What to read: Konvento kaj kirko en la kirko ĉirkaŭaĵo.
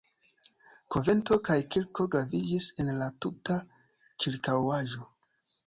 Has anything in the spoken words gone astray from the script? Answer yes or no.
yes